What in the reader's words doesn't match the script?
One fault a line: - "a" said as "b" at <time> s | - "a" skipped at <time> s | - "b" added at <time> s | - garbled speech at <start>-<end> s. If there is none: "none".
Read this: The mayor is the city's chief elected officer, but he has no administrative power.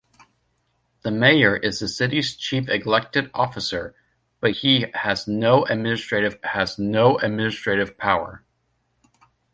- "has no administrative" added at 6.4 s